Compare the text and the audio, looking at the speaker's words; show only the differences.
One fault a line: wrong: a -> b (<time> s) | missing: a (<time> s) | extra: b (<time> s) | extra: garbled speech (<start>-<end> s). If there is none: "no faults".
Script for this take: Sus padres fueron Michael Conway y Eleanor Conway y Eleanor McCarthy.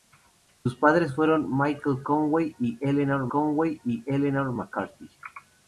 no faults